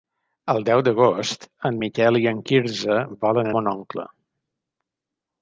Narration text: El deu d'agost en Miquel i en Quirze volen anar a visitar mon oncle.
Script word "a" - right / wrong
wrong